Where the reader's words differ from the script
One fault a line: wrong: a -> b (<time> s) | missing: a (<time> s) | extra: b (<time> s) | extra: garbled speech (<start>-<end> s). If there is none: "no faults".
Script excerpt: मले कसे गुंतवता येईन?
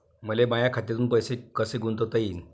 extra: माया खात्यातून पैसे (0.5 s)